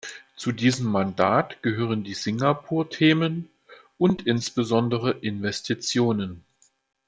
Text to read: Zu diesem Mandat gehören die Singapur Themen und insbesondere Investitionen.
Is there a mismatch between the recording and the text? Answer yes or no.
no